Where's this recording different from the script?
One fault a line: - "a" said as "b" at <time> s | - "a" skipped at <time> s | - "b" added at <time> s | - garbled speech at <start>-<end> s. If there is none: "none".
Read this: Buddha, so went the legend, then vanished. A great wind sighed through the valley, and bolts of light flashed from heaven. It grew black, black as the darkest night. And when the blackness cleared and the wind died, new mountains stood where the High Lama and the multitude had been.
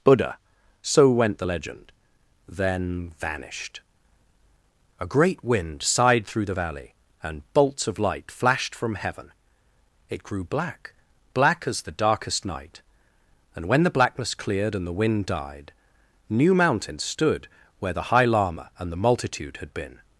none